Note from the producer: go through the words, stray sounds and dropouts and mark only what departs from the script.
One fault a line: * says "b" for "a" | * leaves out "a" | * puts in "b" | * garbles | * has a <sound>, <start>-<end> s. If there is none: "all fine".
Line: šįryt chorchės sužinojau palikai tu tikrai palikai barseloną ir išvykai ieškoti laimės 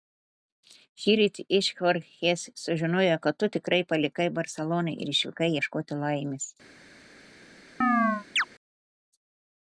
* puts in "iš"
* says "kad" for "palikai"
* has a chirp, 7.8-8.4 s